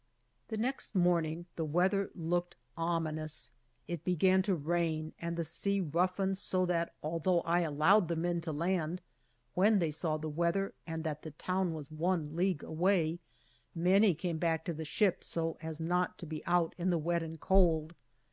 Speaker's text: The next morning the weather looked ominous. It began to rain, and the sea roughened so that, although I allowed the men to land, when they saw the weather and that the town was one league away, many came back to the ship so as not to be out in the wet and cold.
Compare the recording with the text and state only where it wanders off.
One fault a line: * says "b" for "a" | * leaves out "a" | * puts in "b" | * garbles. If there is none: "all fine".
all fine